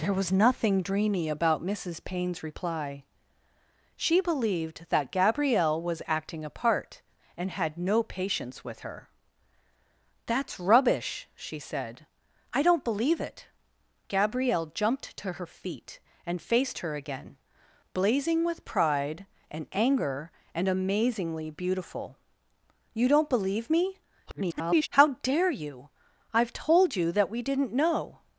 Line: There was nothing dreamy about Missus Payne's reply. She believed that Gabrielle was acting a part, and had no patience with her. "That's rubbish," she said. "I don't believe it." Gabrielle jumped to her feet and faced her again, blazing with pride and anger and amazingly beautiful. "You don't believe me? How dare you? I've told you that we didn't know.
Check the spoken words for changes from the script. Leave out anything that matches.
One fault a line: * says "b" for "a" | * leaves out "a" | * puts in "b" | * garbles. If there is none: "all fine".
* garbles